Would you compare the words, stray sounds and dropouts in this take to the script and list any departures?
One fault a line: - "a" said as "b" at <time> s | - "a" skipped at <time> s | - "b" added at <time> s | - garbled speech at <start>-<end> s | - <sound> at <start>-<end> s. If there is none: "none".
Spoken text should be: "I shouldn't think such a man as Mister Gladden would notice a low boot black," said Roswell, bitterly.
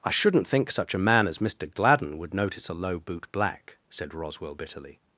none